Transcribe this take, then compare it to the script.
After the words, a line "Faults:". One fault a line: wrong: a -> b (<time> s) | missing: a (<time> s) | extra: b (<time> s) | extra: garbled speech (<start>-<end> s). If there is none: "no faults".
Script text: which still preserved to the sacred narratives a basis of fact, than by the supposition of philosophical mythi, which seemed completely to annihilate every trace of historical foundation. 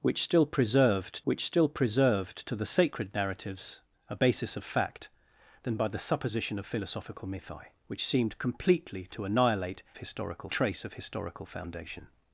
which still preserved which still preserved to the sacred narratives a basis of fact, than by the supposition of philosophical mythi, which seemed completely to annihilate historical trace of historical foundation.
Faults:
extra: which still preserved (1.2 s)
wrong: every -> historical (10.0 s)